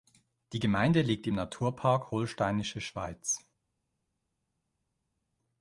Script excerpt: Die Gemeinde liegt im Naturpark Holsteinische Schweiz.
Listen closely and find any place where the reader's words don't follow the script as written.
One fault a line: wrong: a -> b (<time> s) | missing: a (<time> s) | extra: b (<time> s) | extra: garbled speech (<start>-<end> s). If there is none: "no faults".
no faults